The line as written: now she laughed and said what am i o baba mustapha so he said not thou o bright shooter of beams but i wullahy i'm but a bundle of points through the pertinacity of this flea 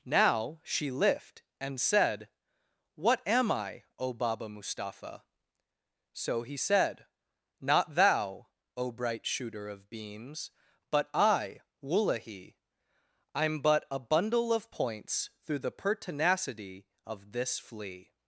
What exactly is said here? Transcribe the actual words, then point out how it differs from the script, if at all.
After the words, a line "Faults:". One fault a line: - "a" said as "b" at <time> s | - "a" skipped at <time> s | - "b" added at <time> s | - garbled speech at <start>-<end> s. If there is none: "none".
now she lift and said what am i o baba mustapha so he said not thou o bright shooter of beams but i wullahy i'm but a bundle of points through the pertinacity of this flea
Faults:
- "laughed" said as "lift" at 0.9 s